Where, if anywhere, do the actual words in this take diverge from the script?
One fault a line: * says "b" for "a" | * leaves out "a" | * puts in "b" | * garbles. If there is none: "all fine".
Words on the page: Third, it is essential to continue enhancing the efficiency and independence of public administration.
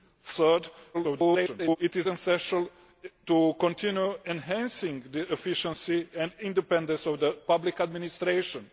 * garbles